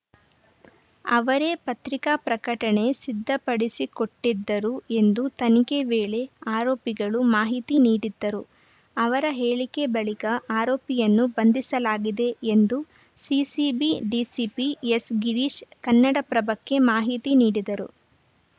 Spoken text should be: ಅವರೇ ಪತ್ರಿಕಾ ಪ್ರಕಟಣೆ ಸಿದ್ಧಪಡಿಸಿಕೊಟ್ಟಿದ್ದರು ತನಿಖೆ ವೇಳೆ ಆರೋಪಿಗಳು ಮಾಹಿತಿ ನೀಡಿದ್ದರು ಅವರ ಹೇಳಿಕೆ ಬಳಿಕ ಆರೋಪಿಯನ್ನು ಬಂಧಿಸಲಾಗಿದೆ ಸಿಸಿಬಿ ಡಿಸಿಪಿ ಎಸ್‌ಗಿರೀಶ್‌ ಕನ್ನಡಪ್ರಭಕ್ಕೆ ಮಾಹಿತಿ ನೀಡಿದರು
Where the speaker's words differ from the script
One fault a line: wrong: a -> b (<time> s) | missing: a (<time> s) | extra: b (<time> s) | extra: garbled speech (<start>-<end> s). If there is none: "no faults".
extra: ಎಂದು (5.0 s)
extra: ಎಂದು (12.5 s)